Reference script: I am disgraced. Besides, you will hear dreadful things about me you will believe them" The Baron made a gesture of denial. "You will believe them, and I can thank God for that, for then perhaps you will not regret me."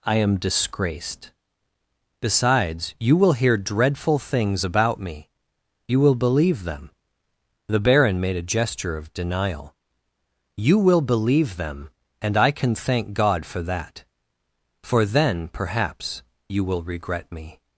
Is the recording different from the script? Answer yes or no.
yes